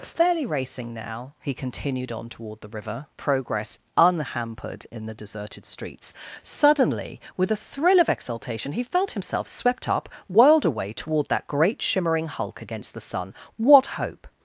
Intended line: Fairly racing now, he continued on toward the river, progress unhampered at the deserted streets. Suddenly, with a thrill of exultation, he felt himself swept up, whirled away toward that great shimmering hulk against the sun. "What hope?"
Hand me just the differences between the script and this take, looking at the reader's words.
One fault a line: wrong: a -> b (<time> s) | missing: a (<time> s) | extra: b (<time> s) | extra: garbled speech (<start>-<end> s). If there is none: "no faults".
wrong: at -> in (4.9 s)